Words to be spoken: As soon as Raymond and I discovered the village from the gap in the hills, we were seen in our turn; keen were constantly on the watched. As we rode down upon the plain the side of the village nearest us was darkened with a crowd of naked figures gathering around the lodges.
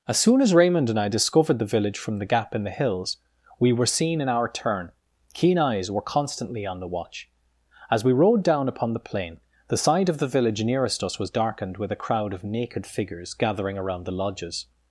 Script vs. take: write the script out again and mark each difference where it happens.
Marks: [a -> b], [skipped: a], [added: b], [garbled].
As soon as Raymond and I discovered the village from the gap in the hills, we were seen in our turn; keen [added: eyes] were constantly on the [watched. -> watch] As we rode down upon the plain the side of the village nearest us was darkened with a crowd of naked figures gathering around the lodges.